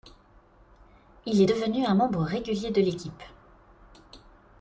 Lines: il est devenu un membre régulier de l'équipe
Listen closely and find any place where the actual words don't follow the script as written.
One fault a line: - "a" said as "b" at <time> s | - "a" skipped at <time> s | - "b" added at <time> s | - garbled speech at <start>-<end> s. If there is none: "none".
none